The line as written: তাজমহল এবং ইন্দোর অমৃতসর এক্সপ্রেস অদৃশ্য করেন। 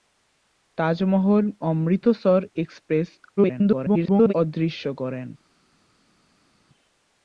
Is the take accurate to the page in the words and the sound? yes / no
no